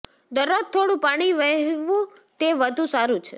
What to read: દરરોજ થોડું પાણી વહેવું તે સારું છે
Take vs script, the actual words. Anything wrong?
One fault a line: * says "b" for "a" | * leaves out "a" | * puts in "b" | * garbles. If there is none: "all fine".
* puts in "વધુ"